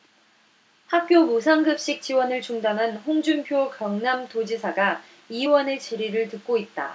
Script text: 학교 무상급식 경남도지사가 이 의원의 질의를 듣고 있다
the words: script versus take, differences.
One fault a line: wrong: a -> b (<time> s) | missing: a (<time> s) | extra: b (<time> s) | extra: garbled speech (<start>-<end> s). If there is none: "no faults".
extra: 지원을 중단한 홍준표 (2.0 s)